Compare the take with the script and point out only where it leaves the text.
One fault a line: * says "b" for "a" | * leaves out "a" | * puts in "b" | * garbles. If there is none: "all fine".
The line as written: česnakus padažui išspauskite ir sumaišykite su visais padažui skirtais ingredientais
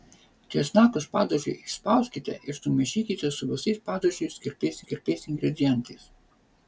* puts in "skirtais"